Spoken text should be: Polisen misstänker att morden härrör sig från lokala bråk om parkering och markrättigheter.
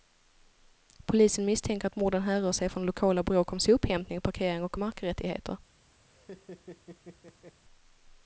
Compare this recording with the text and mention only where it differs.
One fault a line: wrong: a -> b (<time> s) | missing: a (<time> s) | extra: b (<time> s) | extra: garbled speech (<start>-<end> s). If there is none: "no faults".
extra: sophämtning (3.6 s)